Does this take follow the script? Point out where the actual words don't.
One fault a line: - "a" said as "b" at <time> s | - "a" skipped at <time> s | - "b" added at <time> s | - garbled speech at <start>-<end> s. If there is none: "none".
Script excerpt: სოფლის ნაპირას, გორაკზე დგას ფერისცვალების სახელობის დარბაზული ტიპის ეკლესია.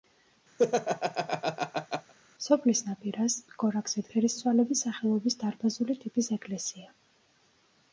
- "დგას" skipped at 4.0 s